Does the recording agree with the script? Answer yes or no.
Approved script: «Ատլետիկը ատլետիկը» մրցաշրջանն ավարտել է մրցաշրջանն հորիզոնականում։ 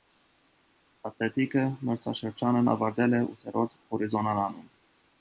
no